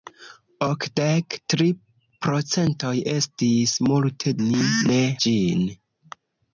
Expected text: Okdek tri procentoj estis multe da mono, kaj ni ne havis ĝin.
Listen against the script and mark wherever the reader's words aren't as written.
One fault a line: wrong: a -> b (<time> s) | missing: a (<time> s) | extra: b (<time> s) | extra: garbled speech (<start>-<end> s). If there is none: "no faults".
missing: da mono kaj (4.3 s)
missing: havis (5.0 s)